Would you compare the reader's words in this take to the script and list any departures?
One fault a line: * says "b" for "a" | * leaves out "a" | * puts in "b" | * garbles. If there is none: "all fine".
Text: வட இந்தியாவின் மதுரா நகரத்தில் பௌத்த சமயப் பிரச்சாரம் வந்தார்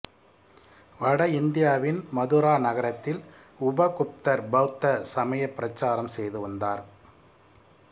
* puts in "உபகுப்தர்"
* puts in "செய்து"